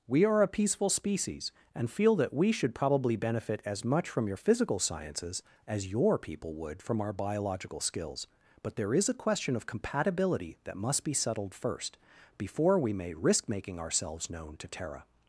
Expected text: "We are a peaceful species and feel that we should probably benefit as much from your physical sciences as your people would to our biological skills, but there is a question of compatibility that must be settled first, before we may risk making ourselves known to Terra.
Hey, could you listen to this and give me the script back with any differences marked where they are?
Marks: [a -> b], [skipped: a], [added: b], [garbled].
"We are a peaceful species and feel that we should probably benefit as much from your physical sciences as your people would [to -> from] our biological skills, but there is a question of compatibility that must be settled first, before we may risk making ourselves known to Terra.